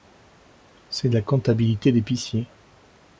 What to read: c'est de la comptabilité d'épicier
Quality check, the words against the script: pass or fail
pass